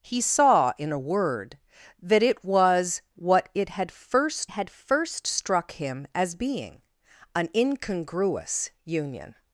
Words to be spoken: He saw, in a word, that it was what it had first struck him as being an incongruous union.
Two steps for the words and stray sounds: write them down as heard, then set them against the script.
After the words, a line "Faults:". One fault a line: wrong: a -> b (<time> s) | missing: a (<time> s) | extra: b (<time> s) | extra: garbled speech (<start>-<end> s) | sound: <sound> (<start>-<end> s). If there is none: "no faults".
He saw, in a word, that it was what it had first had first struck him as being an incongruous union.
Faults:
extra: had first (4.5 s)